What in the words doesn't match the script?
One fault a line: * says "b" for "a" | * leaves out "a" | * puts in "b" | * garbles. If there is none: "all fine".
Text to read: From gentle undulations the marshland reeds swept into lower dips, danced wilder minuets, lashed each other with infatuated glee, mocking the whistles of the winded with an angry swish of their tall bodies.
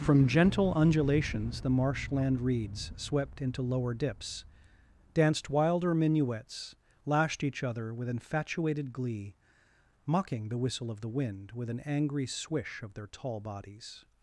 * says "whistle" for "whistles"
* says "wind" for "winded"